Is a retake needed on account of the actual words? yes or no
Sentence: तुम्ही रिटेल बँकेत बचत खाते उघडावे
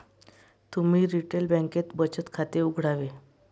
no